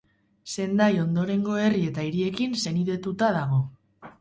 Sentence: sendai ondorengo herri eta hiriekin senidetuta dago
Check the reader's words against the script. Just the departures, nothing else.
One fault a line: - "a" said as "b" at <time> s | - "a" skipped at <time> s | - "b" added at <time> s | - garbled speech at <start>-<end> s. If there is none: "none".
none